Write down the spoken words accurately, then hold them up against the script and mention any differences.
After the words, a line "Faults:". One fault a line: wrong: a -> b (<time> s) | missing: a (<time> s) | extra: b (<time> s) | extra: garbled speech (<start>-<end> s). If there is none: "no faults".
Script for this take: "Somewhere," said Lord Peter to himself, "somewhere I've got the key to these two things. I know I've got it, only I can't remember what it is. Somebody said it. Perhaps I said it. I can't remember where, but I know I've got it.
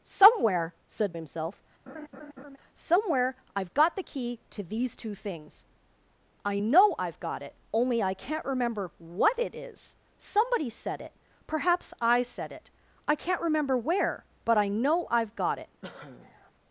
"Somewhere," said Himself, "somewhere I've got the key to these two things. I know I've got it, only I can't remember what it is. Somebody said it. Perhaps I said it. I can't remember where, but I know I've got it.
Faults:
missing: Lord Peter to (1.2 s)